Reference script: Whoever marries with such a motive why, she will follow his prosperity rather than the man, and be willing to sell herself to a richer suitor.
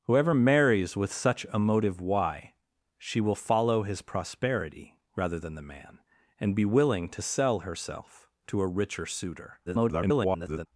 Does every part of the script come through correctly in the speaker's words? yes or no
no